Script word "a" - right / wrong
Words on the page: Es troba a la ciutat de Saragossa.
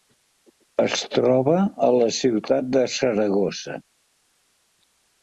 right